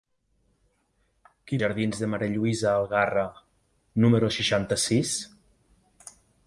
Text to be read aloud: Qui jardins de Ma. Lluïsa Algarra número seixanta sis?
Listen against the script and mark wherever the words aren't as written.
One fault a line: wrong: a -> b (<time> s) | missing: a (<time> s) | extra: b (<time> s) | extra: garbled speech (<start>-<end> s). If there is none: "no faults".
no faults